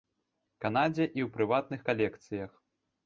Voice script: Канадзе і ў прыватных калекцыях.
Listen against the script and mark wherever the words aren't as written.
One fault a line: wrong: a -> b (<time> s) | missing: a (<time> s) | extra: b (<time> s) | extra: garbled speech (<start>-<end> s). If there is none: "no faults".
no faults